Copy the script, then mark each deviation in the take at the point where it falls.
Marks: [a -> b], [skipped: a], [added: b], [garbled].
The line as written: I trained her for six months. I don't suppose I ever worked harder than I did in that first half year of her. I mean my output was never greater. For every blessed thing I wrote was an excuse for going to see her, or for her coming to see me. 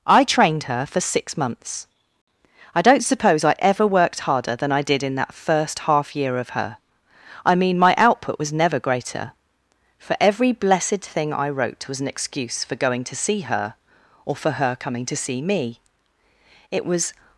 I trained her for six months. I don't suppose I ever worked harder than I did in that first half year of her. I mean my output was never greater. For every blessed thing I wrote was an excuse for going to see her, or for her coming to see me. [added: It was]